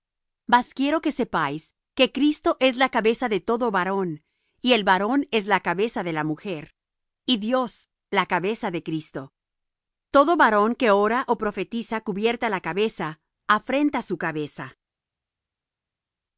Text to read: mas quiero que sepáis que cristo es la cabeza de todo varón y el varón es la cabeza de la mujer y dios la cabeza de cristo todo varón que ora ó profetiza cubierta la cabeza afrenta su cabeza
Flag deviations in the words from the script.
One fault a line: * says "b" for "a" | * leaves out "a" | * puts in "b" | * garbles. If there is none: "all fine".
all fine